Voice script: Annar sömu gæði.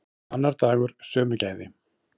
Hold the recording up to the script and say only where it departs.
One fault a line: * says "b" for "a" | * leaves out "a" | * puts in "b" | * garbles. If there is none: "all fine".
* puts in "dagur"